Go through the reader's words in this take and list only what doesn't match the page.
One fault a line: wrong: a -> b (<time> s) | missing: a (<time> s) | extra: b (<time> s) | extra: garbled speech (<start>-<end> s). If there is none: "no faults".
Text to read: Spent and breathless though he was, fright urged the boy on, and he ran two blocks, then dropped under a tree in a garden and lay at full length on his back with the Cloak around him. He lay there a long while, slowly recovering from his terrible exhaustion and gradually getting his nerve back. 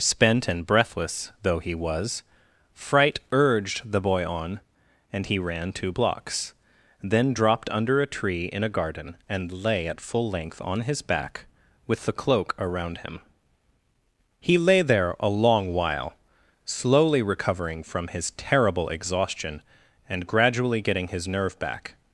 no faults